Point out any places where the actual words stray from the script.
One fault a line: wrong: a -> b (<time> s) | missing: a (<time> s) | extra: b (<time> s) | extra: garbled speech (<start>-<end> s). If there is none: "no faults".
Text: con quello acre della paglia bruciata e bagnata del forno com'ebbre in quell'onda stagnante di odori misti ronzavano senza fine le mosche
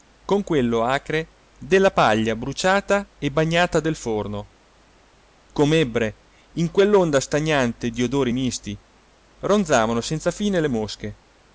no faults